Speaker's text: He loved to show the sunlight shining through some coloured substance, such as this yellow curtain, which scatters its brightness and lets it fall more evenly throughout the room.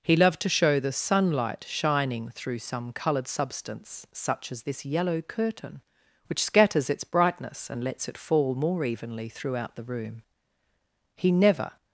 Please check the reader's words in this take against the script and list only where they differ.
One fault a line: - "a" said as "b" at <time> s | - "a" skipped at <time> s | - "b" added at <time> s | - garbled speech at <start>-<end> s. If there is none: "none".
- "He never" added at 11.2 s